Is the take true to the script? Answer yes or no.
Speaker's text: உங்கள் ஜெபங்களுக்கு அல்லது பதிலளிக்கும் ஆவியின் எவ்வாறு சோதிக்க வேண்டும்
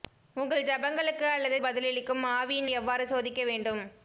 yes